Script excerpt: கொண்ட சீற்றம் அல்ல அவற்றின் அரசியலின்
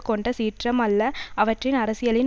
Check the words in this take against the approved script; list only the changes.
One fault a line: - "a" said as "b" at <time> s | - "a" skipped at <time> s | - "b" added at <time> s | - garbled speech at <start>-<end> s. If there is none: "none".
none